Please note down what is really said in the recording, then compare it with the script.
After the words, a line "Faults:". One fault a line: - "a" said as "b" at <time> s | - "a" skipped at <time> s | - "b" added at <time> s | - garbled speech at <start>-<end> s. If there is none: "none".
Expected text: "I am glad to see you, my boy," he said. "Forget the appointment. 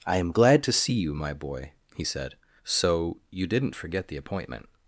"I am glad to see you, my boy," he said. "So you didn't forget the appointment.
Faults:
- "So you didn't" added at 2.6 s